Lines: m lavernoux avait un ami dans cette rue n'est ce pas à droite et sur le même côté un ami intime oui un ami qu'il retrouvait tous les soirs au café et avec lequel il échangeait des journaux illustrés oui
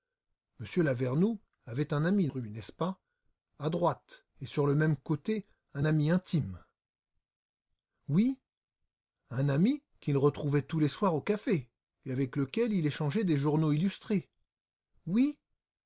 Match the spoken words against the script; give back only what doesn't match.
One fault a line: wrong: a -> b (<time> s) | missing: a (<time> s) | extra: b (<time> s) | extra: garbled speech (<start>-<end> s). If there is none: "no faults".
missing: dans cette (2.3 s)